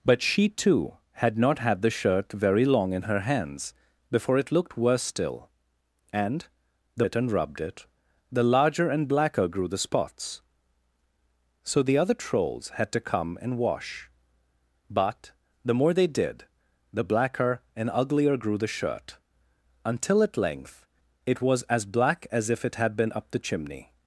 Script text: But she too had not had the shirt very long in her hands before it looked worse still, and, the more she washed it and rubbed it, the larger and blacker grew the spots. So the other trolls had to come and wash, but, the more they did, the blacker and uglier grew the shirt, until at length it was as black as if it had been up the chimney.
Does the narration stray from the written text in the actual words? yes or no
yes